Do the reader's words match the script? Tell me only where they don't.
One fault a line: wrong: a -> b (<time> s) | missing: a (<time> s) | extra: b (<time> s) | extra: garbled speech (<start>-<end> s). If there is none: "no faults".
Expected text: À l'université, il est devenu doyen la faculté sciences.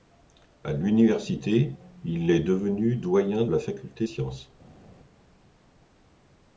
no faults